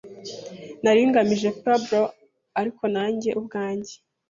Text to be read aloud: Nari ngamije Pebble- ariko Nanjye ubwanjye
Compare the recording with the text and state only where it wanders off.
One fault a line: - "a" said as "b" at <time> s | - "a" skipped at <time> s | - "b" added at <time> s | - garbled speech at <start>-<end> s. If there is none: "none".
none